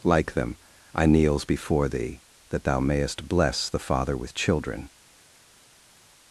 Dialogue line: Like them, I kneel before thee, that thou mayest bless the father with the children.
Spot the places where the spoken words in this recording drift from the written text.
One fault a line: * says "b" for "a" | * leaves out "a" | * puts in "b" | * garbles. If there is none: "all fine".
* says "kneels" for "kneel"
* leaves out "the"